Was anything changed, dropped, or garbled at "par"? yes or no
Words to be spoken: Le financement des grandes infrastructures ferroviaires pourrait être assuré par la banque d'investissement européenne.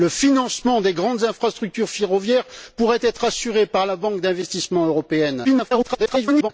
no